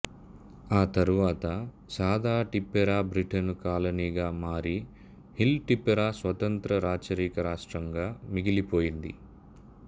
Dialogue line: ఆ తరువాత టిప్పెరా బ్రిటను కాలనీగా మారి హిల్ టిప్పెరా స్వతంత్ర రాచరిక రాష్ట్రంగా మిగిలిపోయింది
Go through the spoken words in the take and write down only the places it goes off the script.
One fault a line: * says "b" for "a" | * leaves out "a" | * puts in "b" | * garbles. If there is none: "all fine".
* puts in "సాదా"